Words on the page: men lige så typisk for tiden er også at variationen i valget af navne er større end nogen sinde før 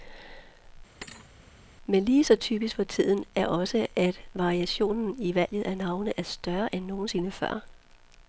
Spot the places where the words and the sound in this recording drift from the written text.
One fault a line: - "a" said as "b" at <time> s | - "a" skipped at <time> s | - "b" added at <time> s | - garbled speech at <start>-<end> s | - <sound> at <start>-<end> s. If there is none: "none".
- thud at 1.0-1.3 s